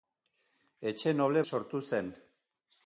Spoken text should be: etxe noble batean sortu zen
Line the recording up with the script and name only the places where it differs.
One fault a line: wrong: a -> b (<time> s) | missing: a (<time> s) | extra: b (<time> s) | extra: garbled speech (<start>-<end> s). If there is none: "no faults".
missing: batean (1.4 s)